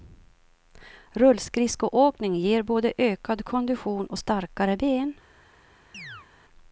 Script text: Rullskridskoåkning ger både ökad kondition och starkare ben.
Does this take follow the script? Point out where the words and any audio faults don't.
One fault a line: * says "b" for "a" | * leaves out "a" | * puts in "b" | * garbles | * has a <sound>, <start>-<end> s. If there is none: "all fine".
* has a chirp, 5.9-6.3 s